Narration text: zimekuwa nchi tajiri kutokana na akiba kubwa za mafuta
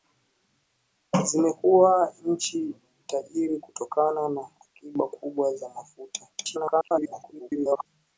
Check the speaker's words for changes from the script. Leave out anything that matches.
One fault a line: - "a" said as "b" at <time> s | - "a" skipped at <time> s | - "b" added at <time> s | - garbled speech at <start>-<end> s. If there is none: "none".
- garbled speech at 6.3-7.9 s